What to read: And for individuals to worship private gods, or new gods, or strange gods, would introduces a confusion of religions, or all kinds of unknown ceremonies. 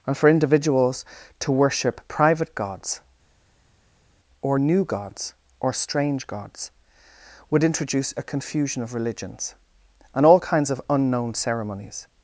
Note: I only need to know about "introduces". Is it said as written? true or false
false